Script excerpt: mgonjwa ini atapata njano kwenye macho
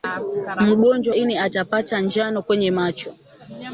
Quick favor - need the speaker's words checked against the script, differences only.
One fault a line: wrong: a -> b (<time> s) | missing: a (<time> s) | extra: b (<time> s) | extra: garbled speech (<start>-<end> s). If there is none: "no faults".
no faults